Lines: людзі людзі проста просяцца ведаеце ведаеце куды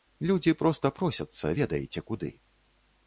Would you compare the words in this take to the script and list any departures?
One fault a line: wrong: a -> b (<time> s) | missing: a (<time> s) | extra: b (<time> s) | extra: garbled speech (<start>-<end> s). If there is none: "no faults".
missing: людзі (0.5 s)
missing: ведаеце (2.0 s)